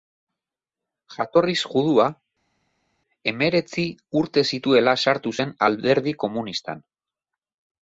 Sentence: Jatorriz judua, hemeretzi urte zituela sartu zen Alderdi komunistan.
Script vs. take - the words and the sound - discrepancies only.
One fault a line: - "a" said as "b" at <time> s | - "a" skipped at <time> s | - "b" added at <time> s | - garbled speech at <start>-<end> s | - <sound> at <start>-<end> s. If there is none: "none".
none